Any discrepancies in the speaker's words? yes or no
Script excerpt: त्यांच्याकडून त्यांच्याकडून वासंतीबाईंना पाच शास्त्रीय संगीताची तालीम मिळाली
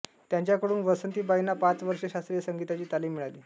yes